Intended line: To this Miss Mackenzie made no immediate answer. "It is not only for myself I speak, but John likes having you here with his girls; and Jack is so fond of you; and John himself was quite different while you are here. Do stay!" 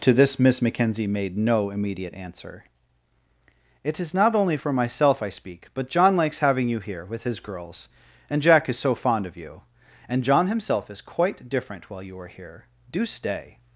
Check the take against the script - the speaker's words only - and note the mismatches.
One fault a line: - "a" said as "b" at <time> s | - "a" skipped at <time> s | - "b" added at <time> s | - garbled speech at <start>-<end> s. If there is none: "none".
- "was" said as "is" at 10.9 s